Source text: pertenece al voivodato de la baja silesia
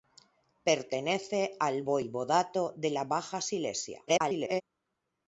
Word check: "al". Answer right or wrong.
right